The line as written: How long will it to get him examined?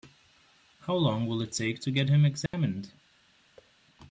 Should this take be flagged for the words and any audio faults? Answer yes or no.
yes